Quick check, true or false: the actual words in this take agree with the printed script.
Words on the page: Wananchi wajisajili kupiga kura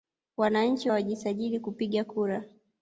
true